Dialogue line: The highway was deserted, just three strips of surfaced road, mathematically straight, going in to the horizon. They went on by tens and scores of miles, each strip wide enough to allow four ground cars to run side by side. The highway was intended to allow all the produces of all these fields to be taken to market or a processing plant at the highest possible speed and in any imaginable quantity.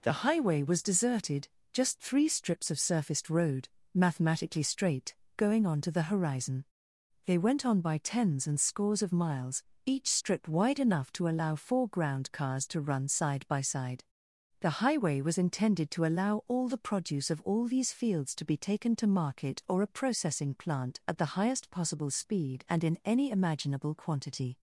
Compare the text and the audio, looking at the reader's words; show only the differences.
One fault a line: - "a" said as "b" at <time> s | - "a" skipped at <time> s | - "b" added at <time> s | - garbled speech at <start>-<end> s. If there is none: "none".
- "in" said as "on" at 5.7 s
- "produces" said as "produce" at 16.8 s